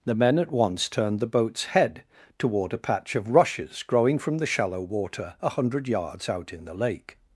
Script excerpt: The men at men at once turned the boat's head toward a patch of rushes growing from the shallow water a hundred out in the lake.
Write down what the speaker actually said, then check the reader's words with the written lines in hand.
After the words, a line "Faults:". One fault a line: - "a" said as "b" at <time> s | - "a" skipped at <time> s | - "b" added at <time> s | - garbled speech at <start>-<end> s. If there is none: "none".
The men at once turned the boat's head toward a patch of rushes growing from the shallow water a hundred yards out in the lake.
Faults:
- "men at" skipped at 0.5 s
- "yards" added at 5.9 s